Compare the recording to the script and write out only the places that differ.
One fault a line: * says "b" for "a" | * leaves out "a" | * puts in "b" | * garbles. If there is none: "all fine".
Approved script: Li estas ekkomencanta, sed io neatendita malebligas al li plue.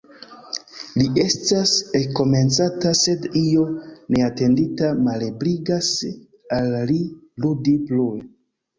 * puts in "ludi"